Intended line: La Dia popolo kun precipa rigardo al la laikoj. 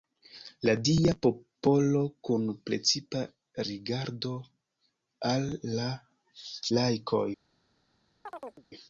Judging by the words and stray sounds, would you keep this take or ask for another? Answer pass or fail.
fail